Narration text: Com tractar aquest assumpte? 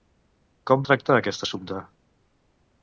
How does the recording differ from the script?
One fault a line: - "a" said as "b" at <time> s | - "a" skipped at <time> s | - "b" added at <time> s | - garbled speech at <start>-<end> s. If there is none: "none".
none